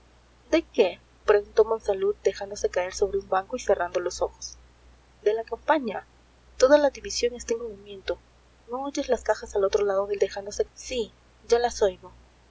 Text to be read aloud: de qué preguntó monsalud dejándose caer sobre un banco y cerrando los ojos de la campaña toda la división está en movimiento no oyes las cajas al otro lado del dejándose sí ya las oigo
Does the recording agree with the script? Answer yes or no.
yes